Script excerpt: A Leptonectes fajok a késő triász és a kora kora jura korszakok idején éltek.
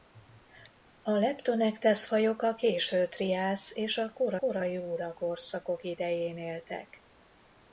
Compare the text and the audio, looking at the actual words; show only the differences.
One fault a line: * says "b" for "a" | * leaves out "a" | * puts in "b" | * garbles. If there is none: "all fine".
all fine